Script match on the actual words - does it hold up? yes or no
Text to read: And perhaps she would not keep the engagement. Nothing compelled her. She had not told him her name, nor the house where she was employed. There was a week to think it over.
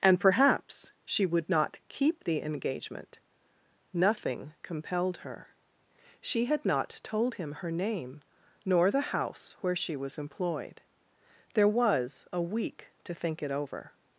yes